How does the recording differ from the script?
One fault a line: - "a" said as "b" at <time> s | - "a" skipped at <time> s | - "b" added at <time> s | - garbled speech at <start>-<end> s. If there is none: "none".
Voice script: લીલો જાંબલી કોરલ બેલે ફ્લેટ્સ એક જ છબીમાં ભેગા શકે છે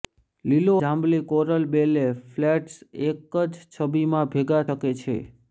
none